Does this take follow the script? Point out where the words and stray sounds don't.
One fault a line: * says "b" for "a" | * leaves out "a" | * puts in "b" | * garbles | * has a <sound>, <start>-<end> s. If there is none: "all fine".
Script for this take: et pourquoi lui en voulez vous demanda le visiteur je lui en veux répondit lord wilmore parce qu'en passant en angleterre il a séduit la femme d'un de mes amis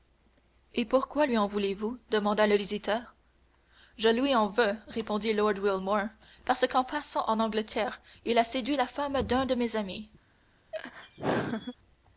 * has a laugh, 10.7-11.7 s